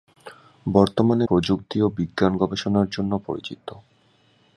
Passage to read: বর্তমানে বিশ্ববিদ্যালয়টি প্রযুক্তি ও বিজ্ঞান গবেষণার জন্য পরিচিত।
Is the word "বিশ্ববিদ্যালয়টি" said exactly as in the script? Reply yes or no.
no